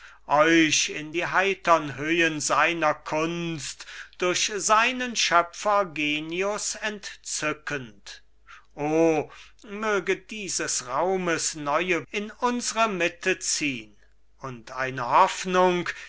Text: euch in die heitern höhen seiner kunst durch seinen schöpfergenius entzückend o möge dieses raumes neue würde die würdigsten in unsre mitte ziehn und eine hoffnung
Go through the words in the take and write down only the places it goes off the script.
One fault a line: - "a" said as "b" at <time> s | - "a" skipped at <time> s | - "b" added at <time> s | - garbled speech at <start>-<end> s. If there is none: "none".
- "würde die würdigsten" skipped at 12.1 s